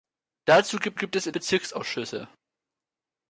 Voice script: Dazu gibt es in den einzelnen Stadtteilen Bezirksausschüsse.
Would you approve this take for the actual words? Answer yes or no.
no